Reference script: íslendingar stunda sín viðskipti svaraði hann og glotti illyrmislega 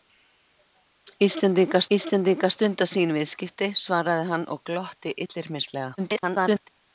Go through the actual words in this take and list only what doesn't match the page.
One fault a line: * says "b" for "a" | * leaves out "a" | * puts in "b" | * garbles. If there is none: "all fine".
* puts in "íslendingar"
* garbles